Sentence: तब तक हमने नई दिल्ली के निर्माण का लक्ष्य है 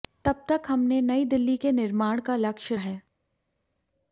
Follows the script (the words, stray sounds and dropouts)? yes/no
yes